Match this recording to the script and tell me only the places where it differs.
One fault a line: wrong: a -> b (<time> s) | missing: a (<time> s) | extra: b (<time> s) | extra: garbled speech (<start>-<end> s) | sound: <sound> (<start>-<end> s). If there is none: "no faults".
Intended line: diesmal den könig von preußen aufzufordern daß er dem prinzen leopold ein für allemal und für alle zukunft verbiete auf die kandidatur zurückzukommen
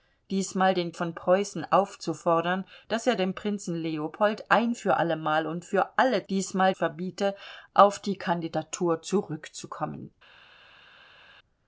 missing: könig (0.9 s)
wrong: zukunft -> diesmal (6.3 s)